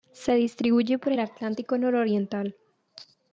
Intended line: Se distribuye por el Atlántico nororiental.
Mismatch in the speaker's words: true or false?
false